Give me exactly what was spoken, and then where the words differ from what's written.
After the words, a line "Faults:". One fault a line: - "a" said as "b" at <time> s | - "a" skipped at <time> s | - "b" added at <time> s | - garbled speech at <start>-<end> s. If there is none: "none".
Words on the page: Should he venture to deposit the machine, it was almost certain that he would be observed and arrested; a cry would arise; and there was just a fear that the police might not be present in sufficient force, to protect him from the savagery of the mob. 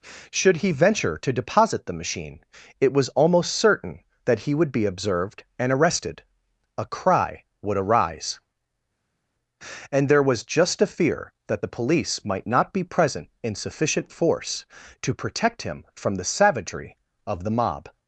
Should he venture to deposit the machine, it was almost certain that he would be observed and arrested; a cry would arise; and there was just a fear that the police might not be present in sufficient force, to protect him from the savagery of the mob.
Faults:
none